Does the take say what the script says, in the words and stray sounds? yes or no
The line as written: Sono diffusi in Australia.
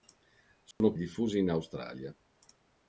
no